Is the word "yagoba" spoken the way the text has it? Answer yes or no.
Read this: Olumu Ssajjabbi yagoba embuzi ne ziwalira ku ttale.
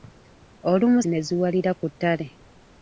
no